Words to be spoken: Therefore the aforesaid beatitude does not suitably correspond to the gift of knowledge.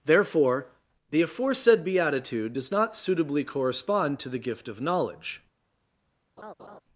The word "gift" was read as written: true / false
true